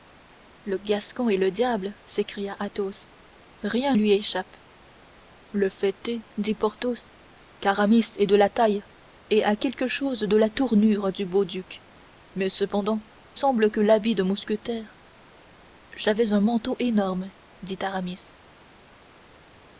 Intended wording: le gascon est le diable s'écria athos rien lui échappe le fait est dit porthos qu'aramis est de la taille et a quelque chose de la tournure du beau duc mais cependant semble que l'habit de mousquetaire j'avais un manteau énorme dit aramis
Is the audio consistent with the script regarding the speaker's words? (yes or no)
yes